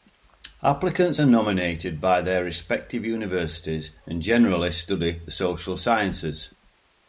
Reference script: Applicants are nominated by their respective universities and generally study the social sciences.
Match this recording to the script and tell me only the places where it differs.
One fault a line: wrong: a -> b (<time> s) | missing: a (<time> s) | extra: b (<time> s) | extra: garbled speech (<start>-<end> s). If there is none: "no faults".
no faults